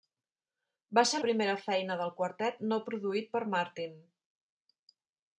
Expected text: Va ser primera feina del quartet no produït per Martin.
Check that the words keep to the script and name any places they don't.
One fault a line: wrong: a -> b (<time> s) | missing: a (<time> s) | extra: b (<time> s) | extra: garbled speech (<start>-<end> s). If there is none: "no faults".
no faults